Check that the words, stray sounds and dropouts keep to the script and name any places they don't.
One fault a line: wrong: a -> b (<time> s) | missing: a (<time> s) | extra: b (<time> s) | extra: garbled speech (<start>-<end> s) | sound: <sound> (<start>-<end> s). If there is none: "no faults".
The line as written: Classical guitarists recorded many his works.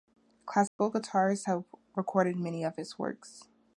sound: dropout (0.7-0.8 s)
extra: have (1.4 s)
extra: of (2.6 s)